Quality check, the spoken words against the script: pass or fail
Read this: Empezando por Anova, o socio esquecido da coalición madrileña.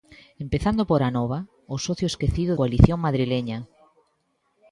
fail